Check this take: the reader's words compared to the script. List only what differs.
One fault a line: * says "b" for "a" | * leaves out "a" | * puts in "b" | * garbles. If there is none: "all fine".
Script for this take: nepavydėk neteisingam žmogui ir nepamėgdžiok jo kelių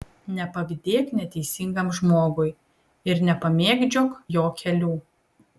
all fine